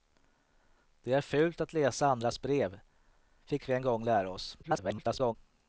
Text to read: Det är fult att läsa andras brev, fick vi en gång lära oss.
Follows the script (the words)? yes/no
no